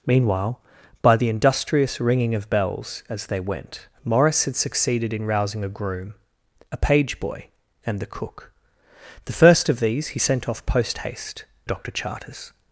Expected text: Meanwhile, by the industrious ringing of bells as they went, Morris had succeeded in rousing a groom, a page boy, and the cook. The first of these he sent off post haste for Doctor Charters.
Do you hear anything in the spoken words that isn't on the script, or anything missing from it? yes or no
yes